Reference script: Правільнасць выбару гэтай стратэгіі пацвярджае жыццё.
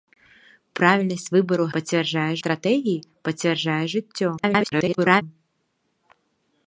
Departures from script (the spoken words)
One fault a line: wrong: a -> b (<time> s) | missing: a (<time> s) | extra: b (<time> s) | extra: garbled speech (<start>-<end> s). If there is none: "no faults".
wrong: гэтай -> пацвярджае (1.8 s)
extra: garbled speech (4.4-5.2 s)